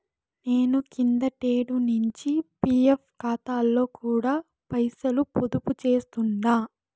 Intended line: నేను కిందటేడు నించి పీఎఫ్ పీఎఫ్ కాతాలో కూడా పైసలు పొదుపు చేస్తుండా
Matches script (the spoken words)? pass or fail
fail